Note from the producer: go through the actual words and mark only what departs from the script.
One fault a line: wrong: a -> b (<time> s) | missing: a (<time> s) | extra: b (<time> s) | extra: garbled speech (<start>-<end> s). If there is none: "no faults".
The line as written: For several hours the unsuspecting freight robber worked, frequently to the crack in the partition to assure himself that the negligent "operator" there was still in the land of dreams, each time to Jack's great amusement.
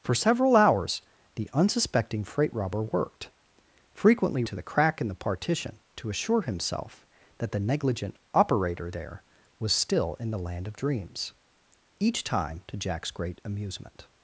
no faults